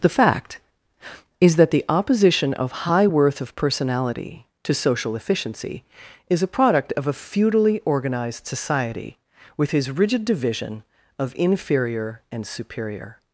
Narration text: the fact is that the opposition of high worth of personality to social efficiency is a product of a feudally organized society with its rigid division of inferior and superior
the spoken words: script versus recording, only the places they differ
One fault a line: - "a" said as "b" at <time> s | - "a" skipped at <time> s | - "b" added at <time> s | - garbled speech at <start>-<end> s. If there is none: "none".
- "its" said as "his" at 9.7 s